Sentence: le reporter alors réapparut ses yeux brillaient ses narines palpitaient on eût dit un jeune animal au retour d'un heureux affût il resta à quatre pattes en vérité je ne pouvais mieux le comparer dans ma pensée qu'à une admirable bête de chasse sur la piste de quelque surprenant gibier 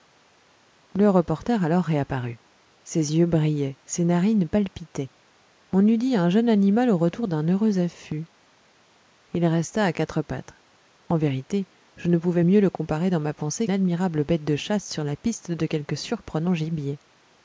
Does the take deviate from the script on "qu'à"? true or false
true